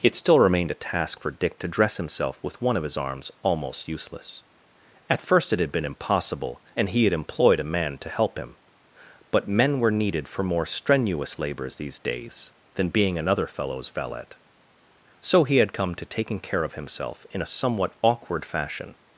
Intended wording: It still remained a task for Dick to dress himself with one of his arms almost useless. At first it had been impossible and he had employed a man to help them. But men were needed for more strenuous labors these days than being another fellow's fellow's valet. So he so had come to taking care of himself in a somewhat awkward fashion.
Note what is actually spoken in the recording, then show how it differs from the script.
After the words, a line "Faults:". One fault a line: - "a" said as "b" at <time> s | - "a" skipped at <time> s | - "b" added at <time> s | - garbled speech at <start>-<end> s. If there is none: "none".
It still remained a task for Dick to dress himself with one of his arms almost useless. At first it had been impossible and he had employed a man to help him. But men were needed for more strenuous labors these days than being another fellow's valet. So he had come to taking care of himself in a somewhat awkward fashion.
Faults:
- "them" said as "him" at 8.4 s
- "fellow's" skipped at 13.9 s
- "so" skipped at 15.6 s